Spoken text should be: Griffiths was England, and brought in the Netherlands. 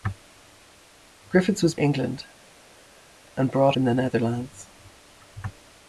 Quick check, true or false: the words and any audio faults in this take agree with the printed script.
true